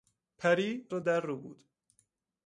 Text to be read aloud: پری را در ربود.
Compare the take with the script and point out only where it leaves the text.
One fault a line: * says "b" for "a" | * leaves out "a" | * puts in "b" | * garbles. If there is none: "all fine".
all fine